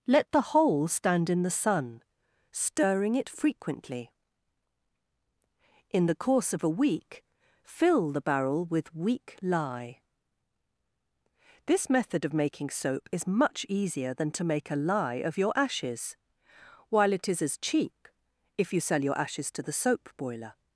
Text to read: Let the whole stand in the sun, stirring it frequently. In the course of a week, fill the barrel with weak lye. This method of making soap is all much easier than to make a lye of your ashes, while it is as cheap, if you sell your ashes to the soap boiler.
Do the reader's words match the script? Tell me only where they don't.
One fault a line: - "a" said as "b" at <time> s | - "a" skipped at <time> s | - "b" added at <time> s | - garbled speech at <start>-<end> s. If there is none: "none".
- "all" skipped at 13.3 s